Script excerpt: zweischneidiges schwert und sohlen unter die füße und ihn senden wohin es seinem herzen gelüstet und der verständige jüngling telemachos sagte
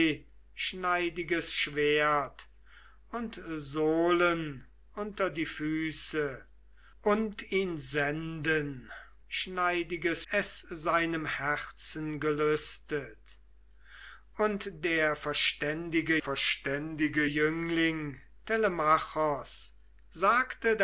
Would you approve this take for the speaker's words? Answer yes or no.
no